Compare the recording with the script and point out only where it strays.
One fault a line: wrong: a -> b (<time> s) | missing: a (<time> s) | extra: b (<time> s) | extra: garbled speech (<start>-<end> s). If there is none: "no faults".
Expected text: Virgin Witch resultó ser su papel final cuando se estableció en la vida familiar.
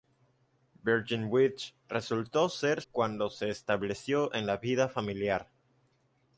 missing: su papel final (2.8 s)